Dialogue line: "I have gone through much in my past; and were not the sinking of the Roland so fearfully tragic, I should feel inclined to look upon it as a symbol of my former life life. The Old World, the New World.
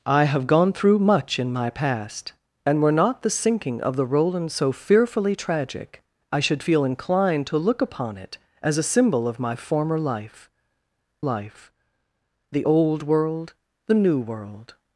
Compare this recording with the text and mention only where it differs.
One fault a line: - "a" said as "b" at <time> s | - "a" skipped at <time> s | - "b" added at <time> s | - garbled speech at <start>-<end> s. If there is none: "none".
none